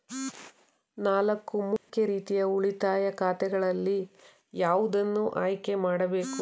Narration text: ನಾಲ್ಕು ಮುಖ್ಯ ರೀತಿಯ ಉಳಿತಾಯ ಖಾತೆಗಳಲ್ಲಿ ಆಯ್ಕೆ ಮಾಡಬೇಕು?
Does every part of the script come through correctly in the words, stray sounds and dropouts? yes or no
no